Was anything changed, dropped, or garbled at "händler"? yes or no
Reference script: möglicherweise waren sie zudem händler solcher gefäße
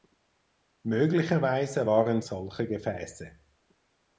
yes